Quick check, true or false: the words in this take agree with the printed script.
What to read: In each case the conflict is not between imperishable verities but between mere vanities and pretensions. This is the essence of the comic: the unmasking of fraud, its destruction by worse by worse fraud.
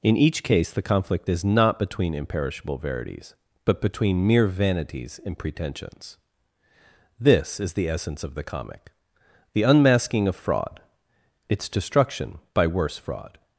false